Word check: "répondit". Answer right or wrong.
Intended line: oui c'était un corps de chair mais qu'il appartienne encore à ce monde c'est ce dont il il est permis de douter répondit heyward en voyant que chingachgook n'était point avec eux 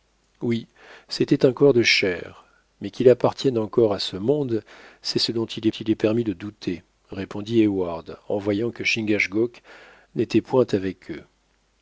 right